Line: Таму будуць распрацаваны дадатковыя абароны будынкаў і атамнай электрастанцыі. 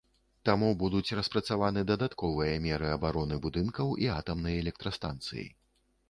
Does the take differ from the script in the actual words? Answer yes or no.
yes